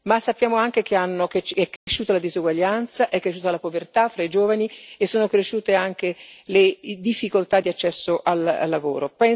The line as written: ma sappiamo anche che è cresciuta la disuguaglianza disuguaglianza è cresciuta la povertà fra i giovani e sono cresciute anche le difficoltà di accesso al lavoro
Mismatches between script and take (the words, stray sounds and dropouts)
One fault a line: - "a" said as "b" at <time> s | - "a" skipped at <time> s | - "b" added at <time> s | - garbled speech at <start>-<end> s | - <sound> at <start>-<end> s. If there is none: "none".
- dropout at 1.8-1.9 s
- "disuguaglianza" skipped at 3.1 s